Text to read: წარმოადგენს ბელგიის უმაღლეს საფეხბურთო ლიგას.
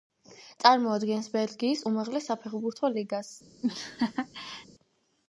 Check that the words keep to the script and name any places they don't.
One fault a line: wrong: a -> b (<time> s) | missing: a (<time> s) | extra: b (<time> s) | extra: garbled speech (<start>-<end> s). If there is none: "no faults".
no faults